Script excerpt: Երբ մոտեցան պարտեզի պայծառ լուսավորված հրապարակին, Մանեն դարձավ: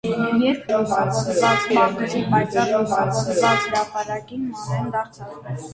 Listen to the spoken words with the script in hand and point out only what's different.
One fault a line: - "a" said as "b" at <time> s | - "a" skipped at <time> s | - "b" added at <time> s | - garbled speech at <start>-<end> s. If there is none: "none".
- "մոտեցան" said as "լուսավորված" at 0.7 s